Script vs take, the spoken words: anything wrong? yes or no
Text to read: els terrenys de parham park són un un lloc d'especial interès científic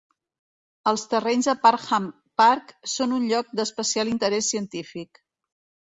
yes